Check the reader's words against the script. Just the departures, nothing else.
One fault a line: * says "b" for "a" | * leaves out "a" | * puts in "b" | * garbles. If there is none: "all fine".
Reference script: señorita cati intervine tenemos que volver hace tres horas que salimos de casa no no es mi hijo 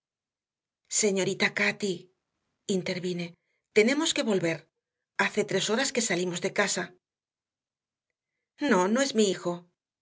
all fine